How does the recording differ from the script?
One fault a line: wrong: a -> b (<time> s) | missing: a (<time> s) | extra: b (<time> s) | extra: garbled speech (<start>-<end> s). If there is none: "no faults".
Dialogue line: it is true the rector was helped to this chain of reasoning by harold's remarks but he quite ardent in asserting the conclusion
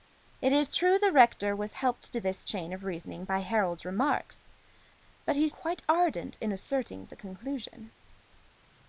no faults